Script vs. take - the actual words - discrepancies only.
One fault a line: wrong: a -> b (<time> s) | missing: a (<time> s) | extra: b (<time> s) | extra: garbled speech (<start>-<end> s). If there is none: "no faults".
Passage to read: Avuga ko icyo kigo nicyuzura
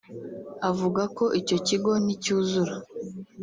no faults